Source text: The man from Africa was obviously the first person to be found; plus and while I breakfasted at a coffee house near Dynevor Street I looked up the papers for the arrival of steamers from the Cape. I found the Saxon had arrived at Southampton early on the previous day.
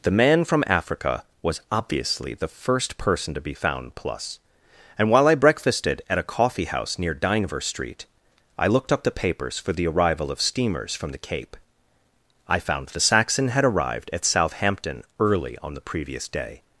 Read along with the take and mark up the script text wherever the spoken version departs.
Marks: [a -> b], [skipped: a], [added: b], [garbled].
The man from Africa was obviously the first person to be found; plus and while I breakfasted at a coffee house near Dynevor Street I looked up the papers for the arrival of steamers from the Cape. I found the Saxon had arrived at Southampton early on the previous day.